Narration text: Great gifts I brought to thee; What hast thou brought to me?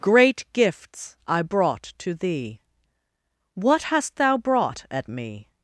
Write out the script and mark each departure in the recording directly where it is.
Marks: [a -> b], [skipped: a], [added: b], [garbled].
Great gifts I brought to thee; What hast thou brought [to -> at] me?